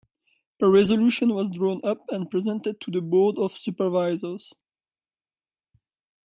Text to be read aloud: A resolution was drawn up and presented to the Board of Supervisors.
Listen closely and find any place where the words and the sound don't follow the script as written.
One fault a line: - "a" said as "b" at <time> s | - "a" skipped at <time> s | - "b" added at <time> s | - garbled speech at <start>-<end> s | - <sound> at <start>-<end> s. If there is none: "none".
none